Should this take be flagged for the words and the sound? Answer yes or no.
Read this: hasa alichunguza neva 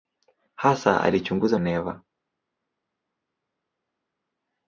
no